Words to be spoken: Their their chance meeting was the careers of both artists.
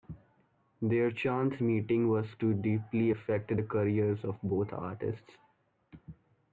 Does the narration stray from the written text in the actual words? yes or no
yes